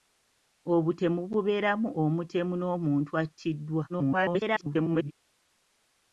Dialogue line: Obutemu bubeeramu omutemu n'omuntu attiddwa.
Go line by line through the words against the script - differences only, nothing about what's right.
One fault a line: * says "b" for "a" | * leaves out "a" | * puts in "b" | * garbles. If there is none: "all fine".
* garbles